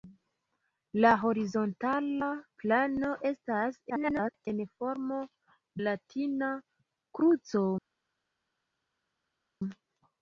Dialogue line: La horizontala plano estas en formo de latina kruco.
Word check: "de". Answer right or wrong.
wrong